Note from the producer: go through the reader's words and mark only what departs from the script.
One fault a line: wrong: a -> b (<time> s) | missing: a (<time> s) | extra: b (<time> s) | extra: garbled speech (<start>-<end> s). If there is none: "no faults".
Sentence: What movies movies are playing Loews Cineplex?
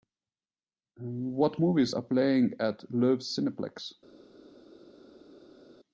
missing: movies (1.9 s)
extra: at (2.6 s)